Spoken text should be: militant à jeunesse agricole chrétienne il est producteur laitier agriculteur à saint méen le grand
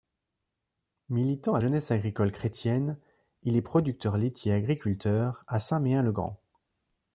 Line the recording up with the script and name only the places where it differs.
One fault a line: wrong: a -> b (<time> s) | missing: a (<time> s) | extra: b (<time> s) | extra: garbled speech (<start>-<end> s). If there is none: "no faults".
no faults